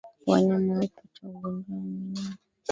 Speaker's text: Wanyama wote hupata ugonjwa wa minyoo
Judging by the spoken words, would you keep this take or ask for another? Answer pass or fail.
fail